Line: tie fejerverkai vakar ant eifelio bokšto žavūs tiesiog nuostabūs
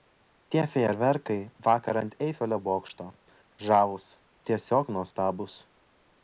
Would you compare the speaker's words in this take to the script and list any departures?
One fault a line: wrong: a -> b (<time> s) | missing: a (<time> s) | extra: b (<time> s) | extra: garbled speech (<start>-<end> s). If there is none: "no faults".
no faults